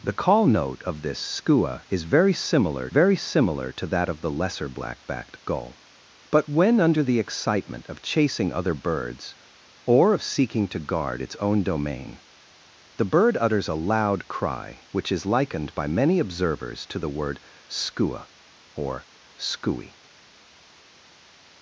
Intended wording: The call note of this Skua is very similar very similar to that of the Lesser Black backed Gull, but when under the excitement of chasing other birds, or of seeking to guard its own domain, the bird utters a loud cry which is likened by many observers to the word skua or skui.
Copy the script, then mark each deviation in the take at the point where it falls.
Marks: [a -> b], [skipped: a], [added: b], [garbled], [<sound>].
The call note of this Skua is very similar very similar to that of the Lesser Black backed Gull, but when under the excitement of chasing other birds, or of seeking to guard its own domain, the bird utters a loud cry which is likened by many observers to the word skua or skui.